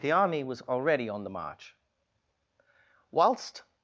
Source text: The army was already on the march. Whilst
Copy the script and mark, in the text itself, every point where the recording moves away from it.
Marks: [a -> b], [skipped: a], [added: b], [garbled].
The army was already on the march. Whilst